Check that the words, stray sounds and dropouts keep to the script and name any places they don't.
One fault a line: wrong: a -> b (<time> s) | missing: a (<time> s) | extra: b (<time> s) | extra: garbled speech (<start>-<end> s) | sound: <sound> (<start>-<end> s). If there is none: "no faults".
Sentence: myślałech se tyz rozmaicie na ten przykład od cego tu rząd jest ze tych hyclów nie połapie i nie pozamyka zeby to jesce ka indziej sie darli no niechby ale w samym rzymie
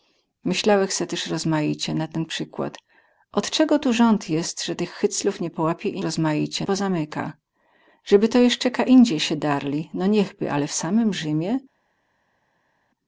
wrong: nie -> rozmaicie (6.0 s)